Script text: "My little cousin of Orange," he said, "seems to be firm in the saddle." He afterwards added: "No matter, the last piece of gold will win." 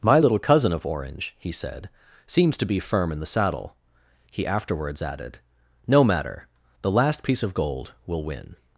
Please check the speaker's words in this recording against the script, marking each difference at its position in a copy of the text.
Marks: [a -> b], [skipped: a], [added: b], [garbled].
"My little cousin of Orange," he said, "seems to be firm in the saddle." He afterwards added: "No matter, the last piece of gold will win."